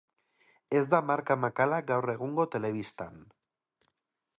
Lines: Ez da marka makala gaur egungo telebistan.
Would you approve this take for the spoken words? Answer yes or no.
yes